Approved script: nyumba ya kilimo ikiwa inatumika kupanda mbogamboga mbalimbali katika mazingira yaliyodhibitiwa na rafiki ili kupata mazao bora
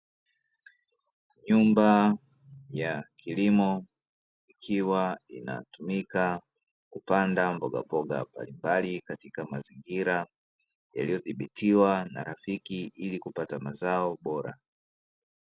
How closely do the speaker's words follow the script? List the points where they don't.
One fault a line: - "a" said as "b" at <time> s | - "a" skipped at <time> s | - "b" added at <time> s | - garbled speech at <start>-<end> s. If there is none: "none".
none